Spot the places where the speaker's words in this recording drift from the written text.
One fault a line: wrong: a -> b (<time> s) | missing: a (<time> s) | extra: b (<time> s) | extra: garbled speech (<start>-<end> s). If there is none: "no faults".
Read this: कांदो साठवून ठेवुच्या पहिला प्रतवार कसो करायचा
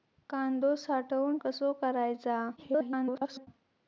missing: ठेवुच्या पहिला प्रतवार (1.4 s)
extra: garbled speech (2.6-3.5 s)